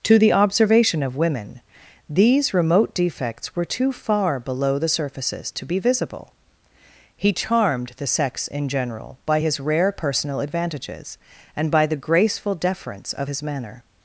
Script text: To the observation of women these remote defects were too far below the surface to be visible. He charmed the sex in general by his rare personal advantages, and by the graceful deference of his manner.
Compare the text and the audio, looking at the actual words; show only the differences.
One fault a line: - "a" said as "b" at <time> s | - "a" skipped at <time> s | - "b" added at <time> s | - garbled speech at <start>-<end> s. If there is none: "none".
- "surface" said as "surfaces" at 4.9 s